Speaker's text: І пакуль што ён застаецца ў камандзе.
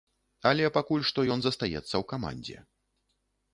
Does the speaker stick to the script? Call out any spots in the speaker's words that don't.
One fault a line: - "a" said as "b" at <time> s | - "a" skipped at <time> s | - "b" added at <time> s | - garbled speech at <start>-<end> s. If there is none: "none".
- "І" said as "Але" at 0.5 s